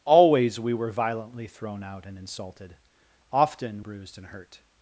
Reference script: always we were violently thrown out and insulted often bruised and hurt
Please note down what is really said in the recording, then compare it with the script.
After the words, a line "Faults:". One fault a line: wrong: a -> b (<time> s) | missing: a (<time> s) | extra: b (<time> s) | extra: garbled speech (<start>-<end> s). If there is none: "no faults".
always we were violently thrown out and insulted often bruised and hurt
Faults:
no faults